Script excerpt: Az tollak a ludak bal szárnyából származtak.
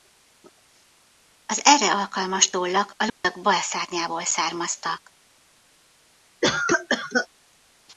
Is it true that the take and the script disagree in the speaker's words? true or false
true